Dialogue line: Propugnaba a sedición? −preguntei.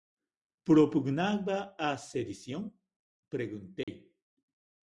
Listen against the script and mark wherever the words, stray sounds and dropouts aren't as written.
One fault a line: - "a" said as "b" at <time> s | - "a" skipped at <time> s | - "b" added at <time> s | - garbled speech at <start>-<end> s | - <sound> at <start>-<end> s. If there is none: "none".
- dropout at 3.8-3.9 s